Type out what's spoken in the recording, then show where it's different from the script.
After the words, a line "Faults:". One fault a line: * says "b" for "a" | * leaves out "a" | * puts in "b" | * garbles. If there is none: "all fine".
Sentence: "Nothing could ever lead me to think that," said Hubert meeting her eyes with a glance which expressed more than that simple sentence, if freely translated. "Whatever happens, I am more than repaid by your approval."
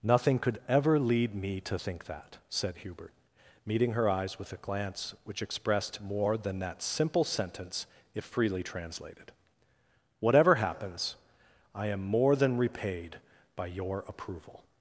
"Nothing could ever lead me to think that," said Hubert meeting her eyes with a glance which expressed more than that simple sentence, if freely translated. "Whatever happens, I am more than repaid by your approval."
Faults:
all fine